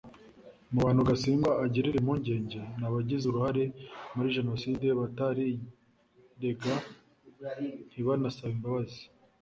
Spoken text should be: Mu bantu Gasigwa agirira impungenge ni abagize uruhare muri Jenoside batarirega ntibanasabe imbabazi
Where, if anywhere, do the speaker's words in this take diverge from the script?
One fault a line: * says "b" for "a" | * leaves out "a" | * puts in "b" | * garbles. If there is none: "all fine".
all fine